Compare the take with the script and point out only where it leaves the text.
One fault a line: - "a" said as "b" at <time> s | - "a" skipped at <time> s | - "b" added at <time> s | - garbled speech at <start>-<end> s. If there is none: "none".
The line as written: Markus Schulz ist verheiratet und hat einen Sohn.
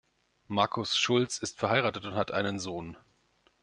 none